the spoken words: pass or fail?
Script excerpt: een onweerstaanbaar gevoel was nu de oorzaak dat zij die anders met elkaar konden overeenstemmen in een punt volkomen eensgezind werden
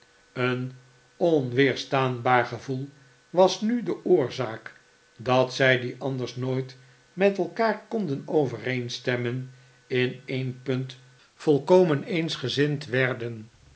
fail